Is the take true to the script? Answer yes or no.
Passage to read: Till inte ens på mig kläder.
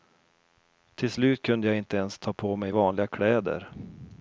no